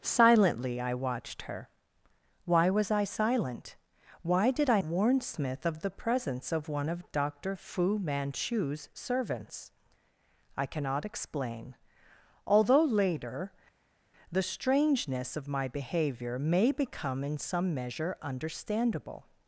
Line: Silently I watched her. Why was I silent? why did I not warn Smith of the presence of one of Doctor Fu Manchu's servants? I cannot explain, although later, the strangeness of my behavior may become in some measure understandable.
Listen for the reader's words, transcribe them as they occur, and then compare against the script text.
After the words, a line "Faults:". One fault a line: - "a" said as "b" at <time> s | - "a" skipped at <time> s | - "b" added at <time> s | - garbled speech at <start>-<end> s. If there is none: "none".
Silently I watched her. Why was I silent? why did I warn Smith of the presence of one of Doctor Fu Manchu's servants? I cannot explain, although later, the strangeness of my behavior may become in some measure understandable.
Faults:
- "not" skipped at 4.8 s